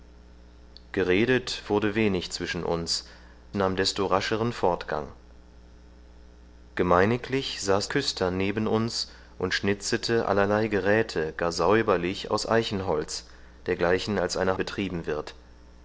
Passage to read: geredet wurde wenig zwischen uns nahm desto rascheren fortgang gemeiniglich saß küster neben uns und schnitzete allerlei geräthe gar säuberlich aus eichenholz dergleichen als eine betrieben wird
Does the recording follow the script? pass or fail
pass